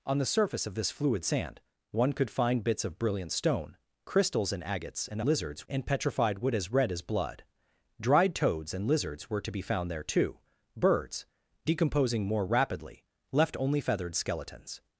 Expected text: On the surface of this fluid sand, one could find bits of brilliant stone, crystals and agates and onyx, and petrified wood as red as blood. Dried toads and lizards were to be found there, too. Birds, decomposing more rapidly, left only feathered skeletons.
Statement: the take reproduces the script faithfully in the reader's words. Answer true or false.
false